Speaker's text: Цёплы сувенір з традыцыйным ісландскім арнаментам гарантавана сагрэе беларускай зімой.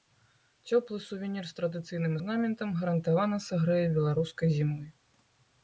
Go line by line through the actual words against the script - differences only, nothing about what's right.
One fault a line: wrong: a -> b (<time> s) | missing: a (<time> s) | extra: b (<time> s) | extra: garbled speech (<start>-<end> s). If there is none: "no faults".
missing: ісландскім (2.1 s)